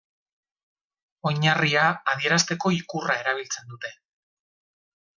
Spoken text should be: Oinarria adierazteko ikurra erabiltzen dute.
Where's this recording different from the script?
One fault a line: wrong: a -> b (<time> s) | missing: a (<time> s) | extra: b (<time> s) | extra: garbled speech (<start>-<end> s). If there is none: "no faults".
no faults